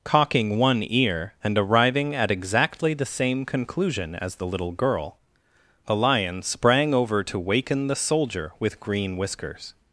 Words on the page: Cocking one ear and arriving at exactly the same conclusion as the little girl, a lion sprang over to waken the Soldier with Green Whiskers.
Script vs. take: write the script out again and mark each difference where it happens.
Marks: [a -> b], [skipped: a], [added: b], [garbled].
Cocking one ear and arriving at exactly the same conclusion as the little girl, a lion sprang over to waken the Soldier with Green Whiskers.